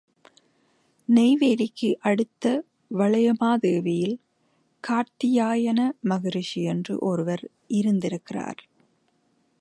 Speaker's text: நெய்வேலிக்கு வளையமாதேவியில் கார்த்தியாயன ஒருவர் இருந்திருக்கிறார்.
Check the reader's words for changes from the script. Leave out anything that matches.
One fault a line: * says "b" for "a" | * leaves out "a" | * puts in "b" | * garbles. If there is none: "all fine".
* puts in "அடுத்த"
* puts in "மகரிஷி என்று"